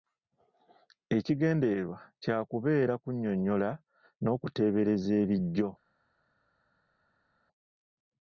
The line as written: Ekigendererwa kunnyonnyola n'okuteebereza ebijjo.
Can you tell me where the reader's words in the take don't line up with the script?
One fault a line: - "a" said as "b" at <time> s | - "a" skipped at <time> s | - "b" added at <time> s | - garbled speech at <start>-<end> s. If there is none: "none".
- "kya kubeera" added at 2.2 s